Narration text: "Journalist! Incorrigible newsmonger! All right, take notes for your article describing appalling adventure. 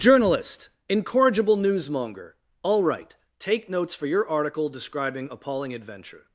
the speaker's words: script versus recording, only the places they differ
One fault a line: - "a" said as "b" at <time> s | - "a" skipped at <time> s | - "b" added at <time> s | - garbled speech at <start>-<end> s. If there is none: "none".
none